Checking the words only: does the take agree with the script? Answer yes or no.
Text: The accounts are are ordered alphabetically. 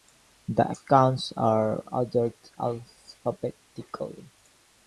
no